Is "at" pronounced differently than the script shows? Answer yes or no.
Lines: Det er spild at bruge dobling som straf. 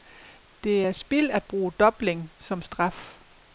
no